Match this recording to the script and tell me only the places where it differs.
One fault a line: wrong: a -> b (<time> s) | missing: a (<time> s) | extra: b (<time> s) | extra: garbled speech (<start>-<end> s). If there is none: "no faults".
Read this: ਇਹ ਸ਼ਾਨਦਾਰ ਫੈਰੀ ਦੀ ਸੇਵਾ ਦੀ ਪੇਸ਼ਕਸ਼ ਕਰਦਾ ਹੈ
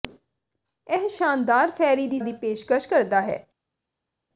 missing: ਸੇਵਾ (2.2 s)